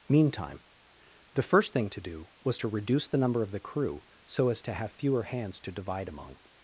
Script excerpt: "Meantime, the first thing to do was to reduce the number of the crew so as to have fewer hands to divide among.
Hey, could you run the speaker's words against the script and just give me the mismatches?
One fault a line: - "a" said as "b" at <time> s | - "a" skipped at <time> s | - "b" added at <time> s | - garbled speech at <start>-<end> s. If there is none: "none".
none